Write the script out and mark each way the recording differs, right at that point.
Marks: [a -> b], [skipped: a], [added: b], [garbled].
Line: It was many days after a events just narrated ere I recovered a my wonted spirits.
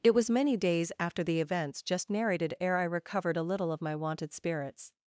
It was many days after [a -> the] events just narrated ere I recovered a [added: little of] my wonted spirits.